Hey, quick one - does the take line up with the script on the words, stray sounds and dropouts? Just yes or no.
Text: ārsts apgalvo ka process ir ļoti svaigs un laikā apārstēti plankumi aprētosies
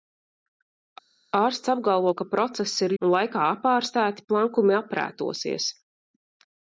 no